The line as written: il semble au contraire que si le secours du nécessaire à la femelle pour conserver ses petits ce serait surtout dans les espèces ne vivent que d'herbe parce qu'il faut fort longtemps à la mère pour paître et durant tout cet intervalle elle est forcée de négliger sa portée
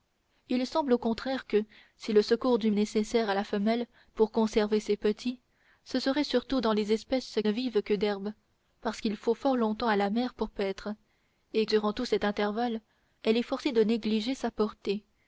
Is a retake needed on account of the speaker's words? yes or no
no